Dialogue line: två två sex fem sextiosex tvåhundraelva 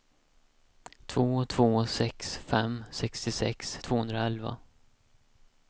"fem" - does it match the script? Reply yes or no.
yes